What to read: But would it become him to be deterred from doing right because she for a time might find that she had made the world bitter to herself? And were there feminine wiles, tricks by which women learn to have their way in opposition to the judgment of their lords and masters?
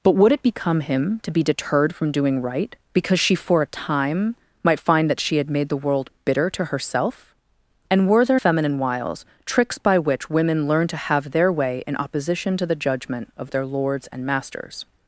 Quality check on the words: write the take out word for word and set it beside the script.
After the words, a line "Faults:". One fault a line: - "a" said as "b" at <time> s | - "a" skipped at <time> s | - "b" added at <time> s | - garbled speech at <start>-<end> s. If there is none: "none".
But would it become him to be deterred from doing right because she for a time might find that she had made the world bitter to herself? And were there feminine wiles, tricks by which women learn to have their way in opposition to the judgment of their lords and masters?
Faults:
none